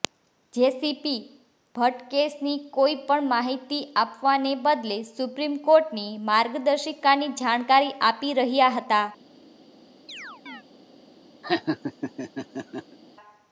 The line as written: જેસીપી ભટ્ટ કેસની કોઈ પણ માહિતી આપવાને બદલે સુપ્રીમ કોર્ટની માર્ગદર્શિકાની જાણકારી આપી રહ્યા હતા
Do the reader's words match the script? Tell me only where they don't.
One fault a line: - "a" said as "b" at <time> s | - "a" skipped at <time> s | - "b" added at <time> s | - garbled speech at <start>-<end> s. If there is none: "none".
none